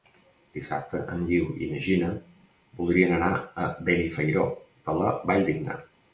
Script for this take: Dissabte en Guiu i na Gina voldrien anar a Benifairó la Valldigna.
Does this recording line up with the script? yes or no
no